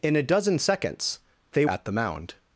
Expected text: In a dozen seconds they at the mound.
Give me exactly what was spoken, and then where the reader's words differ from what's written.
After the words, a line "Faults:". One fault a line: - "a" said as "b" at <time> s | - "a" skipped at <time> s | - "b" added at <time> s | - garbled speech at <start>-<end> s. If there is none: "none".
In a dozen seconds they at the mound.
Faults:
none